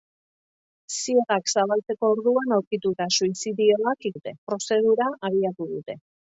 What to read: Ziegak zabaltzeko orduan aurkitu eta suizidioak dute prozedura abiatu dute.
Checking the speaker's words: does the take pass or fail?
pass